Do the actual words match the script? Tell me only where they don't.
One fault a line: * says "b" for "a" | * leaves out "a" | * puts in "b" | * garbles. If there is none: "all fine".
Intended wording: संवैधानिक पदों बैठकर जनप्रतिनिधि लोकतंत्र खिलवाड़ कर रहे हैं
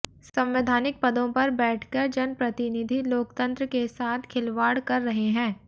* puts in "पर"
* puts in "के साथ"